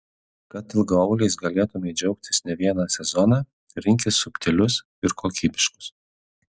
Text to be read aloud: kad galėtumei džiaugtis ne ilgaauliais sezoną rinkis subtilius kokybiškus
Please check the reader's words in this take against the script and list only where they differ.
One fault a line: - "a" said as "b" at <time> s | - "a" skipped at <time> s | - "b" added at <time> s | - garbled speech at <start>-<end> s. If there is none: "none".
- "ilgaauliais" added at 0.8 s
- "ilgaauliais" said as "vieną" at 2.6 s
- "ir" added at 5.1 s